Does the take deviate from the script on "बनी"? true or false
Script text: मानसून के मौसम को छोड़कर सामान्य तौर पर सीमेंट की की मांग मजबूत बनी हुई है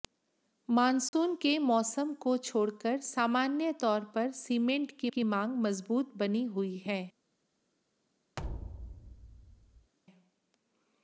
false